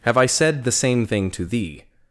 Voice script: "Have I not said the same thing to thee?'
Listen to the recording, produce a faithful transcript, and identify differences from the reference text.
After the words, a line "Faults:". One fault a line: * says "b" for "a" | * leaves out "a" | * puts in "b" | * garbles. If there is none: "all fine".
"Have I said the same thing to thee?'
Faults:
* leaves out "not"